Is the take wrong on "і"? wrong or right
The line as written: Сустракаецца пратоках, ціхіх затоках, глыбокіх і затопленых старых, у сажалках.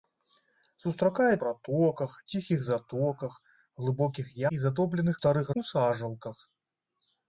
right